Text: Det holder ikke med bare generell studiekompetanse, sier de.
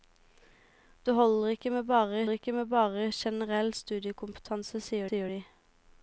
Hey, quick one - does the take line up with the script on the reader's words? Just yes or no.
no